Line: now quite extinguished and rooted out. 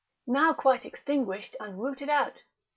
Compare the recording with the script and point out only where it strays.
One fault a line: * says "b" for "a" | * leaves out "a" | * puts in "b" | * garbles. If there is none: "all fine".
all fine